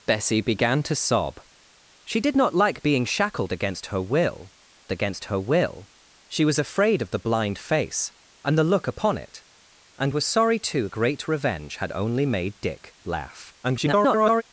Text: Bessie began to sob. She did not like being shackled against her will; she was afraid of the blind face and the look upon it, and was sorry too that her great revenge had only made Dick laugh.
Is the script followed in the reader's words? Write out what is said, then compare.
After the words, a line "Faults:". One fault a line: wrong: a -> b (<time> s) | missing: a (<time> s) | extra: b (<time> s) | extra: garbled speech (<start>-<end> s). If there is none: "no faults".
Bessie began to sob. She did not like being shackled against her will against her will; she was afraid of the blind face and the look upon it, and was sorry too great revenge had only made Dick laugh. [garbled]
Faults:
extra: against her will (4.9 s)
missing: that her (10.9 s)
extra: garbled speech (13.6-14.4 s)